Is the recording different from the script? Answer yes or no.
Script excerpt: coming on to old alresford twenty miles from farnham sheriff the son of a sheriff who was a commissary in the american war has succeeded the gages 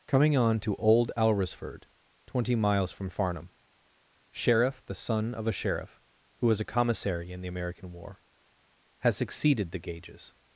no